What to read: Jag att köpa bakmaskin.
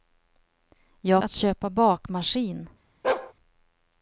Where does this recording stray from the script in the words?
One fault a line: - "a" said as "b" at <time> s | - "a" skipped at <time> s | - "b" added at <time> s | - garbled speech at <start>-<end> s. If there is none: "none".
none